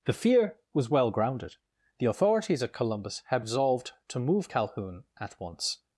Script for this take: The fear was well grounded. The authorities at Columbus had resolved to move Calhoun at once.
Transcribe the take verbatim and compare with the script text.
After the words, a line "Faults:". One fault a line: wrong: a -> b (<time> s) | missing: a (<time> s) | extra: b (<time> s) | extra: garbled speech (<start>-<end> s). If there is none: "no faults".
The fear was well grounded. The authorities at Columbus had resolved to move Calhoun at once.
Faults:
no faults